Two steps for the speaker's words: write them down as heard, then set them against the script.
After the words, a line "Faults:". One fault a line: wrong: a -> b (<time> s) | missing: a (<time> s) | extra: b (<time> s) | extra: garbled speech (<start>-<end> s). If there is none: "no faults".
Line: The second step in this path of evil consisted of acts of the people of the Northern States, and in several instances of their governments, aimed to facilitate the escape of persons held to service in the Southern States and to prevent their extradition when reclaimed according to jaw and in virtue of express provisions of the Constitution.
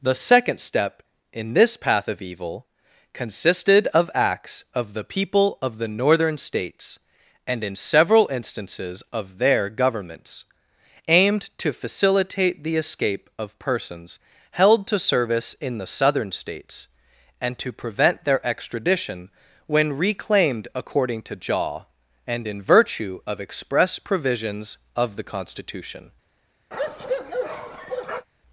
The second step in this path of evil consisted of acts of the people of the Northern States, and in several instances of their governments, aimed to facilitate the escape of persons held to service in the Southern States and to prevent their extradition when reclaimed according to jaw and in virtue of express provisions of the Constitution.
Faults:
no faults